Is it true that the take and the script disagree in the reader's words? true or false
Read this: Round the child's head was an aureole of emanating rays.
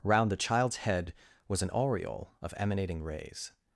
false